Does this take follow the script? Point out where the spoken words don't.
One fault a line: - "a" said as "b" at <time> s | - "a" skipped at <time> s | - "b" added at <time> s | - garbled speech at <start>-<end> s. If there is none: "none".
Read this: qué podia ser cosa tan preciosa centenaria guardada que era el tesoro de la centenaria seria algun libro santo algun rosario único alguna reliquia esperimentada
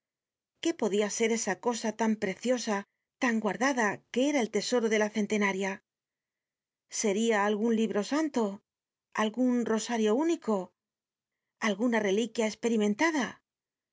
- "esa" added at 1.4 s
- "centenaria" said as "tan" at 3.2 s